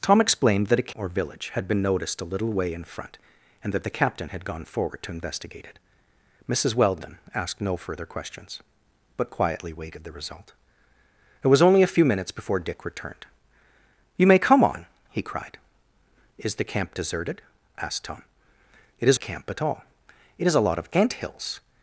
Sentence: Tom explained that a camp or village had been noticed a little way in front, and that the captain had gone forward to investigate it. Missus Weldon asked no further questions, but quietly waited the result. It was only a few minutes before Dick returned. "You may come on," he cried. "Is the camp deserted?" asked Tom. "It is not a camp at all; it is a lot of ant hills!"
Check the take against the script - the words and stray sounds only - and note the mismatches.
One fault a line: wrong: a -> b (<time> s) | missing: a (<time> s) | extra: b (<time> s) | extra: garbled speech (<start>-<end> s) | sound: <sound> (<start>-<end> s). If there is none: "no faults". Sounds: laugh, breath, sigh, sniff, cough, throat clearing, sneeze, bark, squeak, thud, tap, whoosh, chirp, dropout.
missing: camp (0.9 s)
missing: not (19.2 s)